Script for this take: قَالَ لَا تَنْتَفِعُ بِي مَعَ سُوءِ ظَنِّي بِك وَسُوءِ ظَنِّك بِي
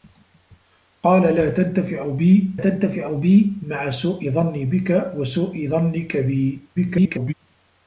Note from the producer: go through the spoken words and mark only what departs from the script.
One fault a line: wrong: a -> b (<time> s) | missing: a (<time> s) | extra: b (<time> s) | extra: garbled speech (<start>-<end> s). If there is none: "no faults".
extra: تَنْتَفِعُ بِي (2.6 s)
extra: garbled speech (6.8-7.3 s)